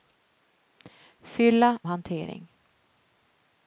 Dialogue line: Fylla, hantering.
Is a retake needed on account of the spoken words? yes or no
no